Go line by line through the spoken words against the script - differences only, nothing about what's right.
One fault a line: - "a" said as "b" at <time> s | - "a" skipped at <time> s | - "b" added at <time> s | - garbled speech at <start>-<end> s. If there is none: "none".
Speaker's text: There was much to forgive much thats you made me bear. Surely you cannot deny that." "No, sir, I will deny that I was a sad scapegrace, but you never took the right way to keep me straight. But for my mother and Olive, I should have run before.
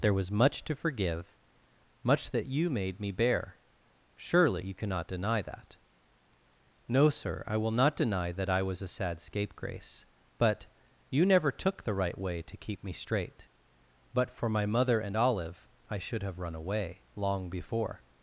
- "thats" said as "that" at 2.3 s
- "not" added at 7.7 s
- "away long" added at 16.5 s